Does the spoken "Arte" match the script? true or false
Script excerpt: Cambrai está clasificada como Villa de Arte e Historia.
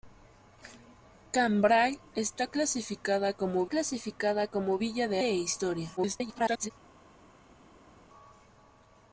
false